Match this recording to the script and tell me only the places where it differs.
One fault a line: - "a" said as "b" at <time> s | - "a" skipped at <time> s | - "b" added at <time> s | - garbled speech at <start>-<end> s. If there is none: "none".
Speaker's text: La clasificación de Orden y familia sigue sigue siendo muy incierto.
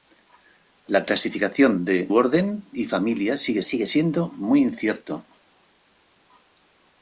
none